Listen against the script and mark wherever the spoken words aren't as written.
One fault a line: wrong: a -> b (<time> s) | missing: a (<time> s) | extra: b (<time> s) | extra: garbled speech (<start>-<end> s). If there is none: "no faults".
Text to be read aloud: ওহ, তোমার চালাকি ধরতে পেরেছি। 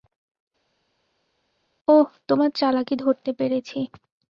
no faults